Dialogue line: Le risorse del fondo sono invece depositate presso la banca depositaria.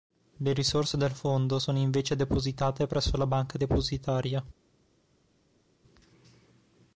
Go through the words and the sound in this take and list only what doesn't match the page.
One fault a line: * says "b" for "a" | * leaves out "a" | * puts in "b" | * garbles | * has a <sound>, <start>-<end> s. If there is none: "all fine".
all fine